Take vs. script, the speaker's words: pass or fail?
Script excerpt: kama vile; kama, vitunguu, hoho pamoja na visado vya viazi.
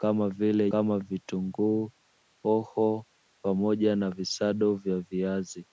pass